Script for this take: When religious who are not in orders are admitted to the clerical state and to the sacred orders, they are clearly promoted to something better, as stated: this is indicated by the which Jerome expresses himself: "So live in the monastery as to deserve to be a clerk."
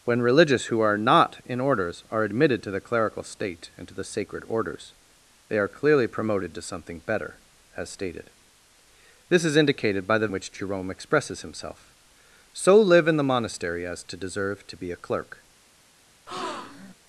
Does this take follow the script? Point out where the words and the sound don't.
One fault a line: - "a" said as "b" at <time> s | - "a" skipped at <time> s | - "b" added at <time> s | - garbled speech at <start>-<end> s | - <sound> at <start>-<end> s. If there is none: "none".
- breath at 16.3-16.9 s